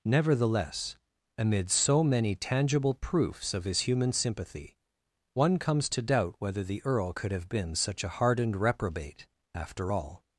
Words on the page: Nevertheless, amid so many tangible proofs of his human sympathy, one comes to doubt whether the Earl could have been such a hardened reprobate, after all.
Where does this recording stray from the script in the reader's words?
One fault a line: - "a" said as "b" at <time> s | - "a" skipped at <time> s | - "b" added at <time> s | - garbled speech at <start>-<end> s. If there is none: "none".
none